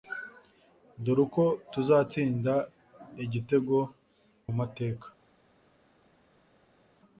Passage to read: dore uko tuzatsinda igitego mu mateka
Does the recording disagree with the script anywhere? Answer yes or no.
no